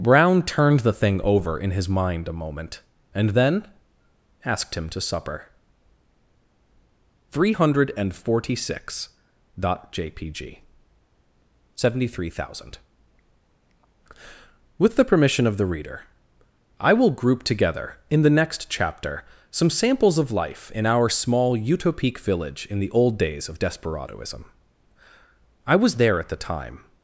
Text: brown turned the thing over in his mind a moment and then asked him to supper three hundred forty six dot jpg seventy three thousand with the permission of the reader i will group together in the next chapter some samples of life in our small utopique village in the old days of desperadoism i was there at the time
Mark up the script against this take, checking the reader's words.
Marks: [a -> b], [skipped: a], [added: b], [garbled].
brown turned the thing over in his mind a moment and then asked him to supper three hundred forty six dot jpg seventy three thousand with the permission of the reader i will group together in the next chapter some samples of life in our small utopique village in the old days of desperadoism i was there at the time